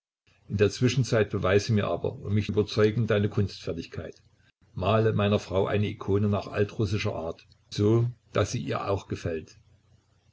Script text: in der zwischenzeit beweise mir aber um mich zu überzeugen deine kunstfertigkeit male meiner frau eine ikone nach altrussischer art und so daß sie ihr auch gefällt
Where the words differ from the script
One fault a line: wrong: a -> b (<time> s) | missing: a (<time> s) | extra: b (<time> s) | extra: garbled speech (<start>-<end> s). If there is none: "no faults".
missing: zu (2.5 s)
missing: und (7.4 s)